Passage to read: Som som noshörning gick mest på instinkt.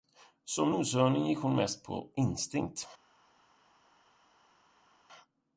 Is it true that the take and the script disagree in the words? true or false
true